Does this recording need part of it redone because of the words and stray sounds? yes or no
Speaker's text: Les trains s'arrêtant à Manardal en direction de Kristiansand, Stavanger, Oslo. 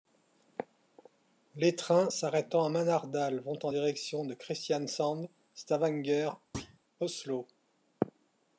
yes